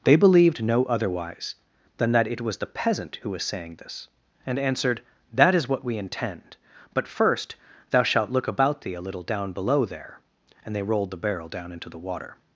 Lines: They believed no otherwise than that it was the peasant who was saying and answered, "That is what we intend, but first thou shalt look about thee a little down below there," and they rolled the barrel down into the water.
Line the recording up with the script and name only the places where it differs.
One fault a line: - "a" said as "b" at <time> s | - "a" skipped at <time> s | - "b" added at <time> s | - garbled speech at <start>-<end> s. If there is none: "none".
- "this" added at 3.8 s